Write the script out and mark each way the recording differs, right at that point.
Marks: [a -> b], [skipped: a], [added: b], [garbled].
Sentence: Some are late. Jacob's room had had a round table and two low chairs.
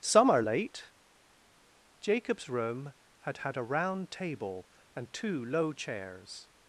Some are late. Jacob's room had had a round table and two low chairs.